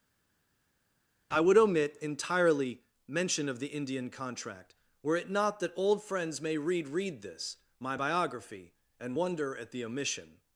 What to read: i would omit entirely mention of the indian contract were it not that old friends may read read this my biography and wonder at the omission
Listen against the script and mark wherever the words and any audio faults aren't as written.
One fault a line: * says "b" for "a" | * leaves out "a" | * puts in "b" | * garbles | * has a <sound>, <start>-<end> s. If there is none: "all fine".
all fine